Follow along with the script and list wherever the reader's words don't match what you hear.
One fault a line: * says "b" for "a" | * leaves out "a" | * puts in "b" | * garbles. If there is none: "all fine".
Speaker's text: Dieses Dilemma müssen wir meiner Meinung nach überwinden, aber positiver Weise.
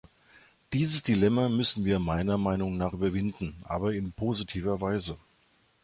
* puts in "in"